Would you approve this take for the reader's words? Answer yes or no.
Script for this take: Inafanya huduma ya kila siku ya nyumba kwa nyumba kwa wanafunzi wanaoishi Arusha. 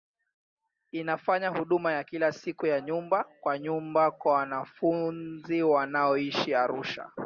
yes